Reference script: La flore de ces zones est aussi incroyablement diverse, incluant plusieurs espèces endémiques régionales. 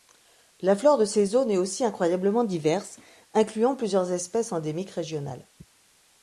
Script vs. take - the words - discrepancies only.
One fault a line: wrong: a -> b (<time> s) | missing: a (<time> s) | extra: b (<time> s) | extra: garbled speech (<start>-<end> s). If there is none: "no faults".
no faults